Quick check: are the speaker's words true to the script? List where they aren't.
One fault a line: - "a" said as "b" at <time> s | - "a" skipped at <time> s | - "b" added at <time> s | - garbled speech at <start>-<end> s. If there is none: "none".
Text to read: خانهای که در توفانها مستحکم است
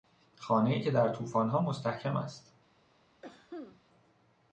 none